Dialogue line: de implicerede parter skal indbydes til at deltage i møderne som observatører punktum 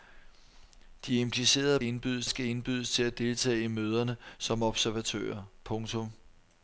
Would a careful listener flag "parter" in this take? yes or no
yes